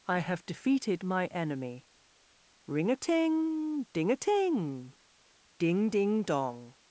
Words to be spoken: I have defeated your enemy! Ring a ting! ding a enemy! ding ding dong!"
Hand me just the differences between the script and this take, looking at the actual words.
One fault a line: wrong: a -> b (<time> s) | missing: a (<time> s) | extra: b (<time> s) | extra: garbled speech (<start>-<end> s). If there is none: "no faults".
wrong: your -> my (1.0 s)
wrong: enemy -> ting (4.2 s)